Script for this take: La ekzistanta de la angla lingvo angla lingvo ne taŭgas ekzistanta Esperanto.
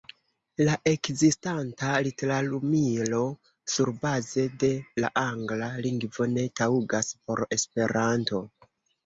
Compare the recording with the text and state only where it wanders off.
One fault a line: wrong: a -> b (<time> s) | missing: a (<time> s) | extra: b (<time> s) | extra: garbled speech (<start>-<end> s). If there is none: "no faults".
extra: literumilo surbaze (2.1 s)
missing: angla lingvo (6.3 s)
wrong: ekzistanta -> por (7.2 s)